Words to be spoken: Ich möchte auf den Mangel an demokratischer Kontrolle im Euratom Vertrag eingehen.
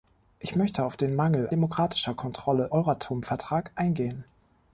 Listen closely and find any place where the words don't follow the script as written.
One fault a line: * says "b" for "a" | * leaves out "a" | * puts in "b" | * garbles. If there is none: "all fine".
* leaves out "an"
* leaves out "im"